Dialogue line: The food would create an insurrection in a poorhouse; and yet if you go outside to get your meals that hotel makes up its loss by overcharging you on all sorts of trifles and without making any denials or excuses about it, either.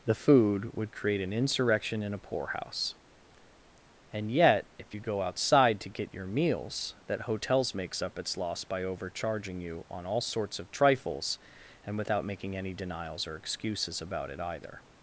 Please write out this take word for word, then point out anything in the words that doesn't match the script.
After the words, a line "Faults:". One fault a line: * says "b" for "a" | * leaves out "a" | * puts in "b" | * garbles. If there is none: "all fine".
The food would create an insurrection in a poorhouse; and yet if you go outside to get your meals that hotels makes up its loss by overcharging you on all sorts of trifles and without making any denials or excuses about it, either.
Faults:
* says "hotels" for "hotel"